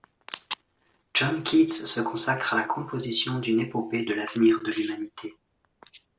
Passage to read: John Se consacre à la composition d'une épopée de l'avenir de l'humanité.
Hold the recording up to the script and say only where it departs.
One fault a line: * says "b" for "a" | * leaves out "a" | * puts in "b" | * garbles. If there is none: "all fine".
* puts in "Keats"